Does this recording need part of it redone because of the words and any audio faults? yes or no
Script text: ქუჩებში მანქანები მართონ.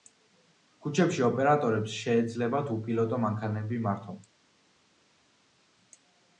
yes